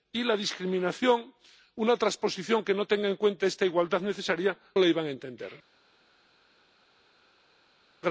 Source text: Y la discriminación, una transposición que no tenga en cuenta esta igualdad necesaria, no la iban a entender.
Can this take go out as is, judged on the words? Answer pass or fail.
fail